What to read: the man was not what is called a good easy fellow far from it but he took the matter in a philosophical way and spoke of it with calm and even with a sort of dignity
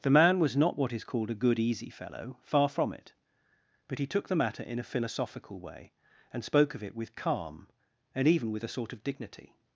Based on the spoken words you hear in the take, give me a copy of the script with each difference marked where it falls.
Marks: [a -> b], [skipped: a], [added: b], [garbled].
the man was not what is called a good easy fellow far from it but he took the matter in a philosophical way and spoke of it with calm and even with a sort of dignity